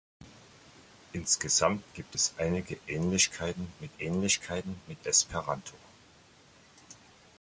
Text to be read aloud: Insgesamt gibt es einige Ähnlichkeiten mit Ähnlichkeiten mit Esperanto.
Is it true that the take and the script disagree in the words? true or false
false